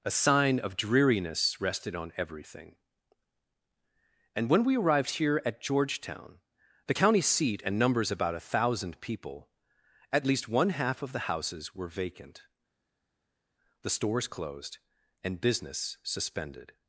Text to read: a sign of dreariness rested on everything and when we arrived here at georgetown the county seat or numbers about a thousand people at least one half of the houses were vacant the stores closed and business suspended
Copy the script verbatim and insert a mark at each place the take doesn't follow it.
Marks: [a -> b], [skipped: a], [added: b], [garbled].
a sign of dreariness rested on everything and when we arrived here at georgetown the county seat [or -> and] numbers about a thousand people at least one half of the houses were vacant the stores closed and business suspended